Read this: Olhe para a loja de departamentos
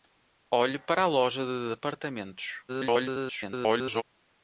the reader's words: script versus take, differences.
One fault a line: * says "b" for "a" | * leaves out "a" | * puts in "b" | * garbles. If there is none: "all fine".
* garbles